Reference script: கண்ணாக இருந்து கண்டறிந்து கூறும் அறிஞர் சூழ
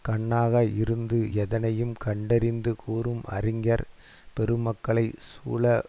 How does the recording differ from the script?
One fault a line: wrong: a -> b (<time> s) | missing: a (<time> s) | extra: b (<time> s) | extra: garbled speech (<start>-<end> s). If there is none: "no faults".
extra: எதனையும் (1.3 s)
extra: பெருமக்களைச் (4.4 s)